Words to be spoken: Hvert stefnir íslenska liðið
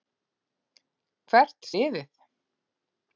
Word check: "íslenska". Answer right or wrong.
wrong